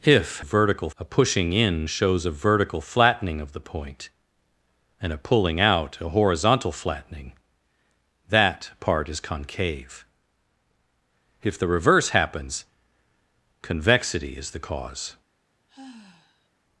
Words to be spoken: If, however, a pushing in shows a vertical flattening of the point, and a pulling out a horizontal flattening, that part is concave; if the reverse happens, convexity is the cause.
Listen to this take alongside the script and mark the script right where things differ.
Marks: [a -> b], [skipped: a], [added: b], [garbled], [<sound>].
If, [however, -> vertical] a pushing in shows a vertical flattening of the point, and a pulling out a horizontal flattening, that part is concave; if the reverse happens, convexity is the cause. [sigh]